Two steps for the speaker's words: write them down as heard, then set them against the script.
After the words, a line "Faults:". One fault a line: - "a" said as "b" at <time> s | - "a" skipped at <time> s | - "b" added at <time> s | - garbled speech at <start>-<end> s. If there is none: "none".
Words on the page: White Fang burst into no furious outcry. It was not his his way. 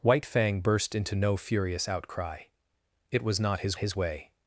White Fang burst into no furious outcry. It was not his his way.
Faults:
none